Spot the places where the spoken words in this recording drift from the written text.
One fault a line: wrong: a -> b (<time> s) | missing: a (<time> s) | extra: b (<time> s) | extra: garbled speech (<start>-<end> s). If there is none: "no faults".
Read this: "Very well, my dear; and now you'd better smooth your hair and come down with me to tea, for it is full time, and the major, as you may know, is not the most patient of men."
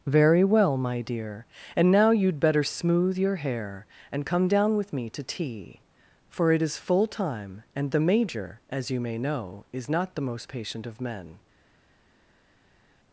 no faults